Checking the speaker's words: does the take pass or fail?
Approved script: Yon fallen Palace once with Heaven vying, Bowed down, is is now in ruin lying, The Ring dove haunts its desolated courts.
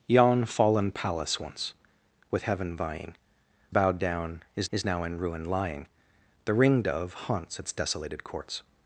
pass